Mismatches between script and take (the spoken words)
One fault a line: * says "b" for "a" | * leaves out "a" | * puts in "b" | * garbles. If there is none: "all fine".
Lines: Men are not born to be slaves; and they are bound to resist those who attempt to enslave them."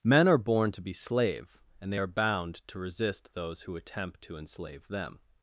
* leaves out "not"
* says "slave" for "slaves"